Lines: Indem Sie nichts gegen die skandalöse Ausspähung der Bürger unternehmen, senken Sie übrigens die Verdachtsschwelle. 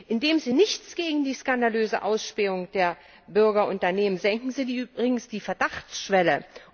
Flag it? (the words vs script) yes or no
no